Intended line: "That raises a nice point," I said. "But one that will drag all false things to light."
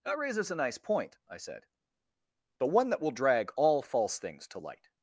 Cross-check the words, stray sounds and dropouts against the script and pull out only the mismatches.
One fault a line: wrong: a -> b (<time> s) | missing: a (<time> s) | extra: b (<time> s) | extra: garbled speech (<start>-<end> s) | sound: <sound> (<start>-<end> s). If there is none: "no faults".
no faults